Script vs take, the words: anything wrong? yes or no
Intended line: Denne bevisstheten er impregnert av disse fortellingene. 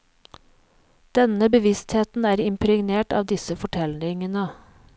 no